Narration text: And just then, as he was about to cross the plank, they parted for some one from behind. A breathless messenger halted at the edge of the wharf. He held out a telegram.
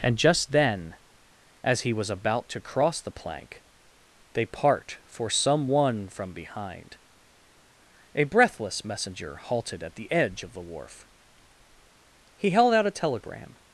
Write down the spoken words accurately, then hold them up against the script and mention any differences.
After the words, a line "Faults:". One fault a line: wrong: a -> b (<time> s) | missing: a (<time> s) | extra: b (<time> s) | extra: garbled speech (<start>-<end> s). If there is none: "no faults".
And just then, as he was about to cross the plank, they part for some one from behind. A breathless messenger halted at the edge of the wharf. He held out a telegram.
Faults:
wrong: parted -> part (4.5 s)